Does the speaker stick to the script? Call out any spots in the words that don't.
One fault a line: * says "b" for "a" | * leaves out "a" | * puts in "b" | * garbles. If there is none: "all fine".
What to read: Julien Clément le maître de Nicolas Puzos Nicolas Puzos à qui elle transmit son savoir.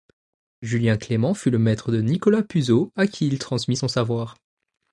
* puts in "fut"
* leaves out "Nicolas Puzos"
* says "il" for "elle"